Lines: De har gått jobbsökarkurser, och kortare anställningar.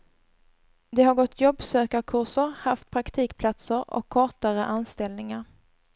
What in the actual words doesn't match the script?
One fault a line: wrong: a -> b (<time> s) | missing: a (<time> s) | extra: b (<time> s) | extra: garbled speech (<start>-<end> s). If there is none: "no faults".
extra: haft praktikplatser (2.6 s)